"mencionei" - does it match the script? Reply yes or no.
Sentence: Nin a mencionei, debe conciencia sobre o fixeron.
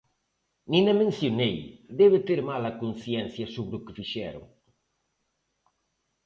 yes